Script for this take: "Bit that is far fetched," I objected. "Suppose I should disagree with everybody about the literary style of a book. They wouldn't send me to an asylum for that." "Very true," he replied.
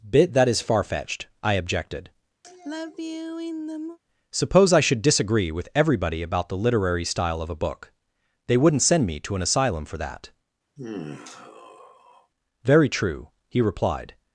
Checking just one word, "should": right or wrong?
right